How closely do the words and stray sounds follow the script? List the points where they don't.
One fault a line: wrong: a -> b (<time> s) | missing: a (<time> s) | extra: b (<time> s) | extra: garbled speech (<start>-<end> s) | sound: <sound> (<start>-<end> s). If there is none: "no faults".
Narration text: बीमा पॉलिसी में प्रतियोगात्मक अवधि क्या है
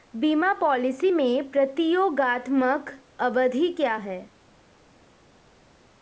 no faults